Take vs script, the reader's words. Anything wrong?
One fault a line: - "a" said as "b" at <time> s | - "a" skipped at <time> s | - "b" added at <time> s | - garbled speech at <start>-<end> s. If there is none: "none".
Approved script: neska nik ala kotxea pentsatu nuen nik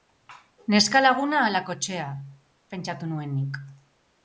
- "nik" said as "laguna" at 1.0 s